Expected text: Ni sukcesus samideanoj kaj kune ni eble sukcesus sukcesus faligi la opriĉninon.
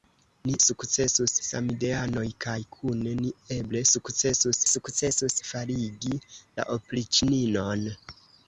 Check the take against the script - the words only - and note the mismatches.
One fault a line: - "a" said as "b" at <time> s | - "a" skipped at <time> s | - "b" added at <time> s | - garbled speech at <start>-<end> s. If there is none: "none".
none